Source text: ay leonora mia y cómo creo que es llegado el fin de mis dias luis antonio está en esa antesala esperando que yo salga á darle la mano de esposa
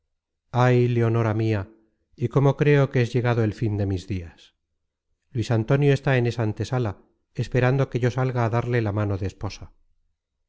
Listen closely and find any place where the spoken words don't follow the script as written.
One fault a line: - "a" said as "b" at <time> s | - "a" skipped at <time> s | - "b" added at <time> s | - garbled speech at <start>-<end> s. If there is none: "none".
none